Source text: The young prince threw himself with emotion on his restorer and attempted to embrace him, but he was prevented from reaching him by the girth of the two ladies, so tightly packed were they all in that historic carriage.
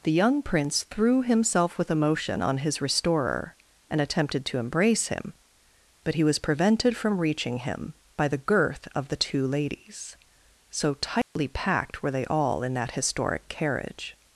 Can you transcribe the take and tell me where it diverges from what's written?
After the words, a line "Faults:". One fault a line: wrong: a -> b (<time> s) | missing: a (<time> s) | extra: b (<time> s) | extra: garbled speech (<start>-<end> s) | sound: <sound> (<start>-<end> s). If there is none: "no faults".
The young prince threw himself with emotion on his restorer and attempted to embrace him, but he was prevented from reaching him by the girth of the two ladies, so tightly packed were they all in that historic carriage.
Faults:
sound: dropout (11.2-11.4 s)